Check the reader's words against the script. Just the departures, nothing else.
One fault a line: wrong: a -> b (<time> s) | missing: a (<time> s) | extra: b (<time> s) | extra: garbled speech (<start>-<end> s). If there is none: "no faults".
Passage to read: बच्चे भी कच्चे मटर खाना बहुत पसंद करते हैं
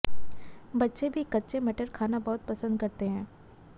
no faults